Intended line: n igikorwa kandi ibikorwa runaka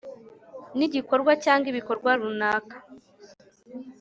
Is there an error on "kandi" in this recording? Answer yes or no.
yes